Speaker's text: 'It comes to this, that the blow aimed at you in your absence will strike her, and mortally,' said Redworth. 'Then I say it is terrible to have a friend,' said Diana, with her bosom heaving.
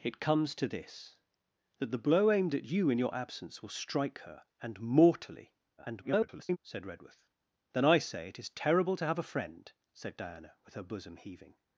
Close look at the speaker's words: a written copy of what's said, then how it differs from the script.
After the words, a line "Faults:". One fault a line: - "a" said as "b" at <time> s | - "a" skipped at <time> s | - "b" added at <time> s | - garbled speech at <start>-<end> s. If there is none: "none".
'It comes to this, that the blow aimed at you in your absence will strike her, and mortally,' [garbled] said Redworth. 'Then I say it is terrible to have a friend,' said Diana, with her bosom heaving.
Faults:
- garbled speech at 5.8-6.6 s